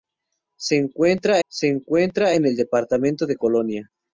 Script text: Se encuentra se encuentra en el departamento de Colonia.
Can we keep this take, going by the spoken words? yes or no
yes